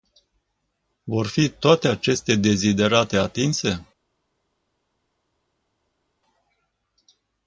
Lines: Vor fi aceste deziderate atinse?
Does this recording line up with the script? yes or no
no